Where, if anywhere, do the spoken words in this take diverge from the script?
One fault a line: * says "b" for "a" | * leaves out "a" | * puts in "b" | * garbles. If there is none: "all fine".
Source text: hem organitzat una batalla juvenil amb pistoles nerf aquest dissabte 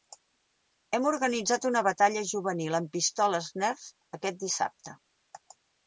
all fine